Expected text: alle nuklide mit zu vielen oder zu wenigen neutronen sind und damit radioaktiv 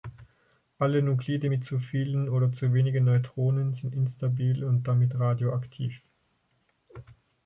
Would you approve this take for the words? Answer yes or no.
no